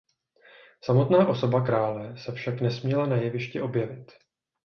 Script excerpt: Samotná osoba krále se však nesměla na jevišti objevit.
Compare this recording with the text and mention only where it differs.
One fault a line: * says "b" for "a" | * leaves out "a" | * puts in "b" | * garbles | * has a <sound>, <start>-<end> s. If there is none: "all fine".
all fine